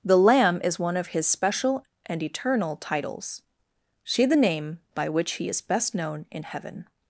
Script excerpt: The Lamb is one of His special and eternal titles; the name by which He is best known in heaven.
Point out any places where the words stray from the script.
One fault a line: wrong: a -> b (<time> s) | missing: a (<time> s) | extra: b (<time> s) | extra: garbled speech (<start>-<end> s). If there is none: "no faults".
extra: see (4.0 s)